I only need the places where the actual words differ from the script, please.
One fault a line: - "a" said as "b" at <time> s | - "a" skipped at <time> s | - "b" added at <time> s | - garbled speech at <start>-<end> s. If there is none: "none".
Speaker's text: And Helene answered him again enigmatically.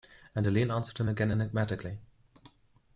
none